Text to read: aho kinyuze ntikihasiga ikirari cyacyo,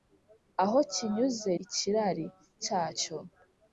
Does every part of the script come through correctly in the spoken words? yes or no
no